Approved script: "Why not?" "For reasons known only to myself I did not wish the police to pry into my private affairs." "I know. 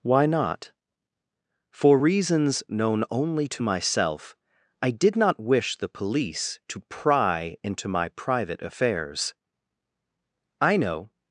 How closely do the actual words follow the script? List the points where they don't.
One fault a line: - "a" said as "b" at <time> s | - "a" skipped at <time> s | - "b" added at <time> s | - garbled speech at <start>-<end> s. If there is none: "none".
none